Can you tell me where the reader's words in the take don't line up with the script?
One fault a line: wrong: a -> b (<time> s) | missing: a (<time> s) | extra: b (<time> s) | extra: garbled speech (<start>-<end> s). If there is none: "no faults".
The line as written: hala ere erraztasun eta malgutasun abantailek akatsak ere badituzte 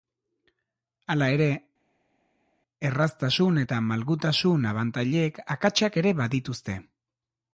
no faults